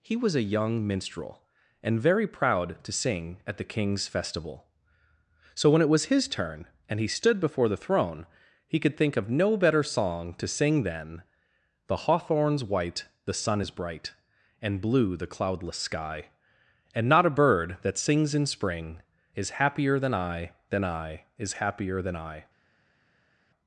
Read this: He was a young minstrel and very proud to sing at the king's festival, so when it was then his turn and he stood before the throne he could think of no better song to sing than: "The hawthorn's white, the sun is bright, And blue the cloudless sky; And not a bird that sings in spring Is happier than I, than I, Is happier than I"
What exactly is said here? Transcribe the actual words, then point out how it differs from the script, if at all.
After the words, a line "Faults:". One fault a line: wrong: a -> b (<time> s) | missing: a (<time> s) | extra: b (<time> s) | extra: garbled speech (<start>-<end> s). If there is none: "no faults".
He was a young minstrel and very proud to sing at the king's festival, so when it was his turn and he stood before the throne he could think of no better song to sing than: "The hawthorn's white, the sun is bright, And blue the cloudless sky; And not a bird that sings in spring Is happier than I, than I, Is happier than I"
Faults:
missing: then (6.0 s)